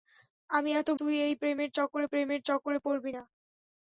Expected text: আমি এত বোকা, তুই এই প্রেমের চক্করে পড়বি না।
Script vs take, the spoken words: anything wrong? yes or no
yes